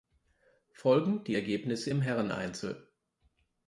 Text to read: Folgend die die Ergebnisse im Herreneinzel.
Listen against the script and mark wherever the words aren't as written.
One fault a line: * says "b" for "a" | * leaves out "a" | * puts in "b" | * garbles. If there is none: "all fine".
* leaves out "die"